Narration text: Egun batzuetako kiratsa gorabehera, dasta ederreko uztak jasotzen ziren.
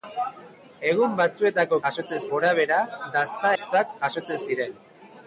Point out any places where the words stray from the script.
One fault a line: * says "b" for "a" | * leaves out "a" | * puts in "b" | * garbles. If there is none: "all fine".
* says "jasotzen" for "kiratsa"
* leaves out "ederreko"